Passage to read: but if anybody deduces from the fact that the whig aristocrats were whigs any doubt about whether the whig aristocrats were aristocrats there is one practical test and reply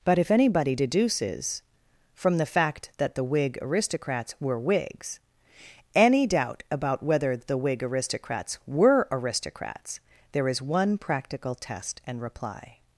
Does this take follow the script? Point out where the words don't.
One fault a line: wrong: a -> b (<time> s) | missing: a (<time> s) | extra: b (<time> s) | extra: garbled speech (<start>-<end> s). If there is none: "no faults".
no faults